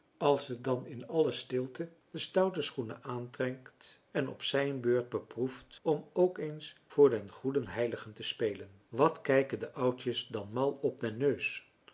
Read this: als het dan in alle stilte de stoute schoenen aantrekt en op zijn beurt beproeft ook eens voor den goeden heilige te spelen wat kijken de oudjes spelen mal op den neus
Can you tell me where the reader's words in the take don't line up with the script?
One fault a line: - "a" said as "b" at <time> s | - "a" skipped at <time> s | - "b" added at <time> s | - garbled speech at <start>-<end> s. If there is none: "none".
- "om" added at 5.8 s
- "spelen" said as "dan" at 10.3 s